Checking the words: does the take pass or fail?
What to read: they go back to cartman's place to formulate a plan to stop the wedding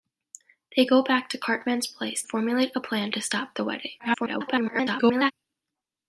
fail